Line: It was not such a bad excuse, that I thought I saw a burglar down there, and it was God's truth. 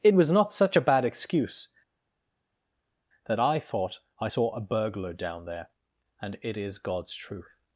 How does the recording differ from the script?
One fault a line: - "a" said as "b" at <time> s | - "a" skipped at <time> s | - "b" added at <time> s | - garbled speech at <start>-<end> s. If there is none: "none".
- "was" said as "is" at 6.6 s